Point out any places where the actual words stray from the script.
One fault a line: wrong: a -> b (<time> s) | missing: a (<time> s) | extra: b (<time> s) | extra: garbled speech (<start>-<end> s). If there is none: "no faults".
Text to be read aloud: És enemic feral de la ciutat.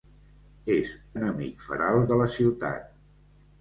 no faults